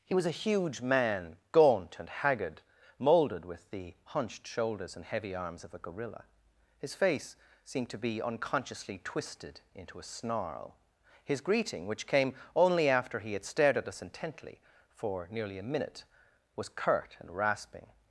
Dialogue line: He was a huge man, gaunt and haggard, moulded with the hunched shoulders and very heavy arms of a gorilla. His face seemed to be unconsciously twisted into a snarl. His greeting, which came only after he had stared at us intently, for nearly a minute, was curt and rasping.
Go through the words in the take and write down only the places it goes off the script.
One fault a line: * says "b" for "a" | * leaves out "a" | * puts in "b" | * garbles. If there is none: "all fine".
* leaves out "very"